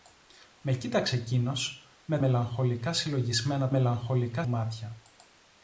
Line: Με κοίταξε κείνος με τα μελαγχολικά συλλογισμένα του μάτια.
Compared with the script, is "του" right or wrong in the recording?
wrong